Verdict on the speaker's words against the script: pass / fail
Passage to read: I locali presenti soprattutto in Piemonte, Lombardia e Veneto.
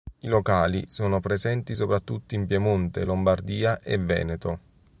fail